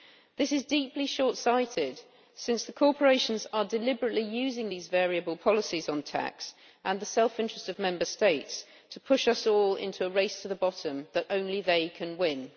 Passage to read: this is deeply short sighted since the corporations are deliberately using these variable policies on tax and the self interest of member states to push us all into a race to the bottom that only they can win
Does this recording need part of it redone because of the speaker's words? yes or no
no